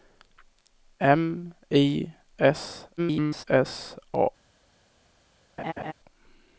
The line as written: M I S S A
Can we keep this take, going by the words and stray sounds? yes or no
no